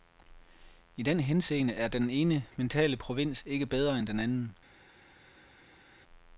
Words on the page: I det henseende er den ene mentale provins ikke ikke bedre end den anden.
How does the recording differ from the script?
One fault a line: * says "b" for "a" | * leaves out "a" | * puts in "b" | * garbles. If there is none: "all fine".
* says "den" for "det"
* leaves out "ikke"